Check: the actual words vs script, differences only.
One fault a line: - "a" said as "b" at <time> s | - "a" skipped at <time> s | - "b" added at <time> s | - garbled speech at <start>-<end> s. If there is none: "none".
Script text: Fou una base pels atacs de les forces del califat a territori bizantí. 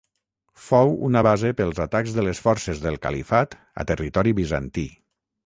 none